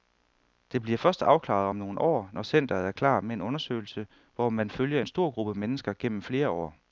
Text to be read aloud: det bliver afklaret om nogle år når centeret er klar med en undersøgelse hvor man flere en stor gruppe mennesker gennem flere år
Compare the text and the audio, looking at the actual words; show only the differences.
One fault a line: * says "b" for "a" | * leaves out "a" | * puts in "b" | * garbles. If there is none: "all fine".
* puts in "først"
* says "følger" for "flere"